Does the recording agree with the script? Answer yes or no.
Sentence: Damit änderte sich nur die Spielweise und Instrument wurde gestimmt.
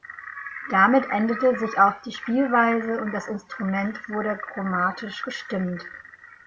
no